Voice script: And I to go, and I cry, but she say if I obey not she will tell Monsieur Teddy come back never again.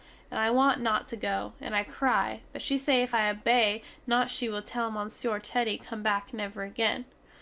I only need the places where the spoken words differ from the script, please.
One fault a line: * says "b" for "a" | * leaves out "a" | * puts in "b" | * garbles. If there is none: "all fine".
* puts in "want not"